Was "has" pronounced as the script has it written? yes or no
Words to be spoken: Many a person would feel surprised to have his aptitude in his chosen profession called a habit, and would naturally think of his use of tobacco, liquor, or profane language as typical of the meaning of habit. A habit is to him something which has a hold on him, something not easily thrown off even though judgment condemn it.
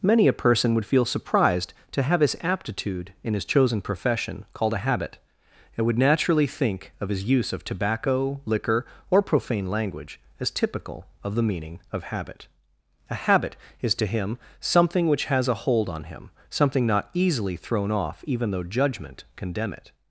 yes